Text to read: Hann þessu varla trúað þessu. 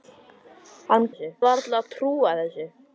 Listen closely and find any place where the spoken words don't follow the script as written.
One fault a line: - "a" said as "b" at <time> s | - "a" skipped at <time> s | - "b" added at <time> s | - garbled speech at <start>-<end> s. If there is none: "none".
none